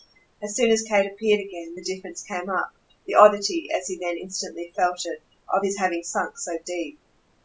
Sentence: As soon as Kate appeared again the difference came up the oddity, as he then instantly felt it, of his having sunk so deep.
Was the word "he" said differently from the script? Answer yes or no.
no